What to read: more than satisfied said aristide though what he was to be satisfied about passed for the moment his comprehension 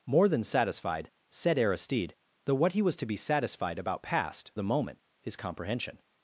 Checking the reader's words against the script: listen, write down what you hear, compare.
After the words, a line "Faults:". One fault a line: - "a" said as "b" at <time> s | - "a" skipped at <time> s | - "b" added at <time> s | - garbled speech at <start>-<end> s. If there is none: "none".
more than satisfied said aristide though what he was to be satisfied about passed the moment his comprehension
Faults:
- "for" skipped at 4.5 s